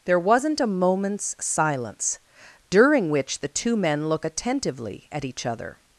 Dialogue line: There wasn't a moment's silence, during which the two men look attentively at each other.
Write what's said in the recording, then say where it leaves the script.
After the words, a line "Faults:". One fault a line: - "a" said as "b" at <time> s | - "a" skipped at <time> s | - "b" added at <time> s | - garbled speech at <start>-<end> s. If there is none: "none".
There wasn't a moment's silence, during which the two men look attentively at each other.
Faults:
none